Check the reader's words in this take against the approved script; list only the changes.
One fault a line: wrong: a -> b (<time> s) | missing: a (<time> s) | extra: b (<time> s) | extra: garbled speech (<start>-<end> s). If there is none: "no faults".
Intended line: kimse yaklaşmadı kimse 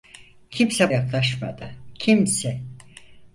no faults